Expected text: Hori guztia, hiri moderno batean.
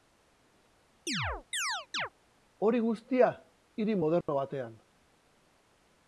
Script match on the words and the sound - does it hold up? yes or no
no